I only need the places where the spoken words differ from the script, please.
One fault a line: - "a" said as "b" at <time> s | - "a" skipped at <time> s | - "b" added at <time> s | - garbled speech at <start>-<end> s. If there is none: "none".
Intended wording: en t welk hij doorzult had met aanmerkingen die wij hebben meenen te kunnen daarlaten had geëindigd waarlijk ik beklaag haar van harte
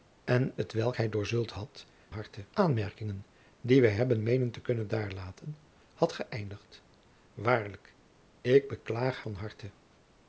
- "met" said as "harte" at 2.1 s
- "haar" skipped at 9.2 s